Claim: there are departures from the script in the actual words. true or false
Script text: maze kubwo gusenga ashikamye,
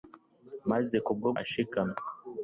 true